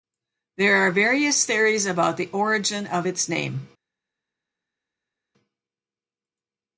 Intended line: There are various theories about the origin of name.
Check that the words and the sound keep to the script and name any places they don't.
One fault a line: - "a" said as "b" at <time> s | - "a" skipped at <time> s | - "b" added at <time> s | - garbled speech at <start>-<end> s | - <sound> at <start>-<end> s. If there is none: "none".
- "its" added at 3.1 s